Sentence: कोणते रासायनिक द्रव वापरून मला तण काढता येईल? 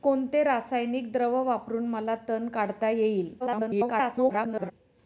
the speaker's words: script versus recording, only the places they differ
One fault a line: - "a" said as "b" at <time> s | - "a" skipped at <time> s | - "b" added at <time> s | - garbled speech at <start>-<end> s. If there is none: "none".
- garbled speech at 3.4-4.7 s